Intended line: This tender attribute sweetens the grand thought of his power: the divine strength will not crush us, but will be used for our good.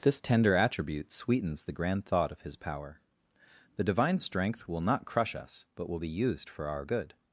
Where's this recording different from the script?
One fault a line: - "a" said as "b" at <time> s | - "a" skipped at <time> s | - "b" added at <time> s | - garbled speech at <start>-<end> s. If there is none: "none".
none